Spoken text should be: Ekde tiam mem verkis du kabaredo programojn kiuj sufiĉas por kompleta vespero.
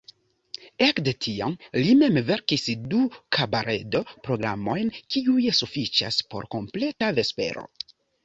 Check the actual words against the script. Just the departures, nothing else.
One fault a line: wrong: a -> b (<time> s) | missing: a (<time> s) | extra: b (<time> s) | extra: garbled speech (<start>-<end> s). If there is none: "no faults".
extra: li (1.8 s)